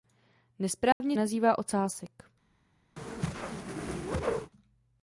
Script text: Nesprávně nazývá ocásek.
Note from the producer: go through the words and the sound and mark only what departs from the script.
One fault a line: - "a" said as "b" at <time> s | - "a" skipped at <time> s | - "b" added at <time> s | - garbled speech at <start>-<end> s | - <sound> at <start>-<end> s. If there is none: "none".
- dropout at 0.9-1.0 s
- whoosh at 3.0-4.5 s